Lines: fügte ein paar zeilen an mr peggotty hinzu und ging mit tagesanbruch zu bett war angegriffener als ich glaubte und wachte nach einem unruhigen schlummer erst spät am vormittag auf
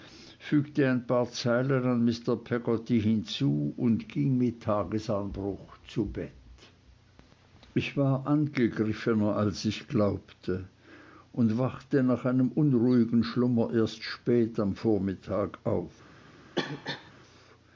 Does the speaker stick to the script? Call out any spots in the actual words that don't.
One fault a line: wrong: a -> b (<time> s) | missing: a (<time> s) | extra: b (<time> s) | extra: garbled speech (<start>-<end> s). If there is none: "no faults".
extra: ich (7.8 s)